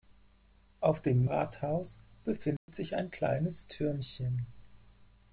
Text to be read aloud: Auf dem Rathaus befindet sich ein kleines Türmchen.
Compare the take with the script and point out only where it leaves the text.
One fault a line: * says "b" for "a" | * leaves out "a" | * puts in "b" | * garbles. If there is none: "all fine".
all fine